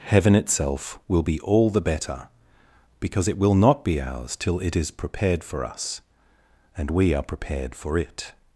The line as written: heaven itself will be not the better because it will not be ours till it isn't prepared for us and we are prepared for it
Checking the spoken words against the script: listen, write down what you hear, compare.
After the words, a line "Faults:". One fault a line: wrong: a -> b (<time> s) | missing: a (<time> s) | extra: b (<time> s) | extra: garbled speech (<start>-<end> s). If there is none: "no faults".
heaven itself will be all the better because it will not be ours till it is prepared for us and we are prepared for it
Faults:
wrong: not -> all (1.4 s)
wrong: isn't -> is (4.7 s)